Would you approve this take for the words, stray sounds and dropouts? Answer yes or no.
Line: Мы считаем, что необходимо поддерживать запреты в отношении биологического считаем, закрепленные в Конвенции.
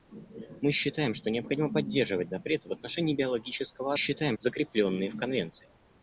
yes